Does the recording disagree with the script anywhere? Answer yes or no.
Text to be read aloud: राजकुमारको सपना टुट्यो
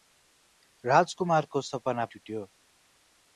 no